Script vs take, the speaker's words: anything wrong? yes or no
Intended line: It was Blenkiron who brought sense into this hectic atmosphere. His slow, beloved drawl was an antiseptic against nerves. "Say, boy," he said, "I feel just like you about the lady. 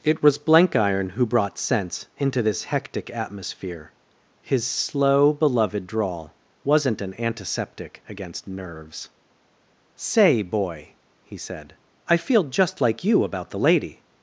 yes